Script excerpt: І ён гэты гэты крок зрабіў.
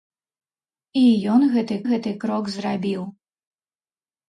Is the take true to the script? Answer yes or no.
yes